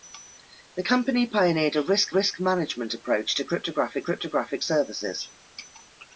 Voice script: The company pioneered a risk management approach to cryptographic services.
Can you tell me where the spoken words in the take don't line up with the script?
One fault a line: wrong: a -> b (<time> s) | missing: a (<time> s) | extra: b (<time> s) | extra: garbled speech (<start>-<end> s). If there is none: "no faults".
extra: risk (2.1 s)
extra: cryptographic (4.0 s)